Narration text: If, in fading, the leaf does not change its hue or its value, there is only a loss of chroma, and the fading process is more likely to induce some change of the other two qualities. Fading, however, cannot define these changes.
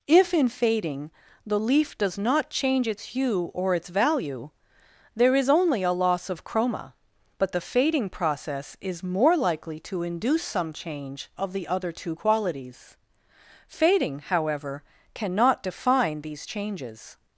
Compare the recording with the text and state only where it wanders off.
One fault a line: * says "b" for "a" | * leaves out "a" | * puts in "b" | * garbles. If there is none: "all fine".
* says "but" for "and"